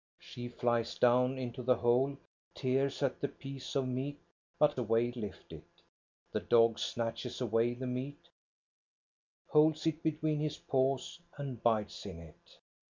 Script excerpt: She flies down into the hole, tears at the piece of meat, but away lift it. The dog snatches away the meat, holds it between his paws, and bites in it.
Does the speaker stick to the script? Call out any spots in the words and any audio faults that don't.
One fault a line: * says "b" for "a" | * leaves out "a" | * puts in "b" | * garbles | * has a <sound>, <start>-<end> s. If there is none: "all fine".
all fine